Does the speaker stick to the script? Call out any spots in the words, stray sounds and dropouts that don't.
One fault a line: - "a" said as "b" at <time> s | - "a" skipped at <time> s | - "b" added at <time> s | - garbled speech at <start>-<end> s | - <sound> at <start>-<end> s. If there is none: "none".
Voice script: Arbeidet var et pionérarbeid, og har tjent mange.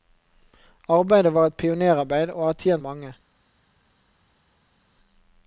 none